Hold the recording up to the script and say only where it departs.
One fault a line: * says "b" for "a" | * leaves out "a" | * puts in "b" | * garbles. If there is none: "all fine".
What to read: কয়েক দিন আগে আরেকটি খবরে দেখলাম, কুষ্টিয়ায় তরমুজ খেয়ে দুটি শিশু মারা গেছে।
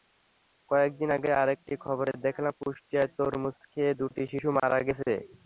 all fine